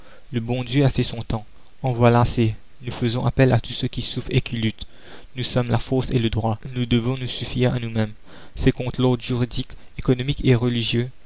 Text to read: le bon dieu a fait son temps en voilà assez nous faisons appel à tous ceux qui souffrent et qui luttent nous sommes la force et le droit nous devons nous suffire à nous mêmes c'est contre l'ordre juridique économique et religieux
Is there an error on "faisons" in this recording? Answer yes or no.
no